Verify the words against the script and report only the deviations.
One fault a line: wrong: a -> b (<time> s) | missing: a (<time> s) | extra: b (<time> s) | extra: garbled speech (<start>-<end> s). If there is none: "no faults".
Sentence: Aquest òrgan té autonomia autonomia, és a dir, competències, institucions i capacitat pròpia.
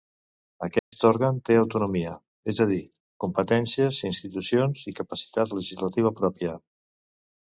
missing: autonomia (2.1 s)
extra: legislativa (5.6 s)